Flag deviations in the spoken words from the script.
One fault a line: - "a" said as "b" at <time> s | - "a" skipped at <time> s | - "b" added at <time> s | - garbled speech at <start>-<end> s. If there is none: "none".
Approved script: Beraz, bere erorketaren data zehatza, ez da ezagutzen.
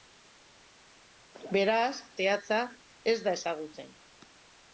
- "bere erorketaren data" skipped at 1.9 s